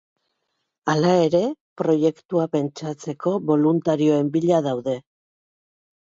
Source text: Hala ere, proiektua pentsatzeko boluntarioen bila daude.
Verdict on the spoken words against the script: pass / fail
pass